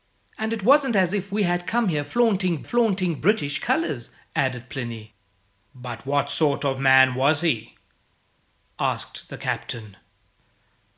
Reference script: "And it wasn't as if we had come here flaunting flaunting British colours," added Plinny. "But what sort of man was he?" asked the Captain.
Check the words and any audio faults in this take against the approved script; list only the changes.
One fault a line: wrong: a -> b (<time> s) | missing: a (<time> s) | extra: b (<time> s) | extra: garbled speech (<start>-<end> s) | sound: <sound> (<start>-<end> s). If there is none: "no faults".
no faults